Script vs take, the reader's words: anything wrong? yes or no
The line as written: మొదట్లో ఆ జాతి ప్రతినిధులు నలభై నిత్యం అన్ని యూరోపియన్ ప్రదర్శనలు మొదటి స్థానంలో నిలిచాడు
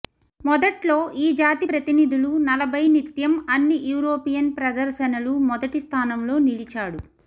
yes